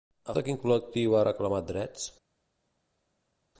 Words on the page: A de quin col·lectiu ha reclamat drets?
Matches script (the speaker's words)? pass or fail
pass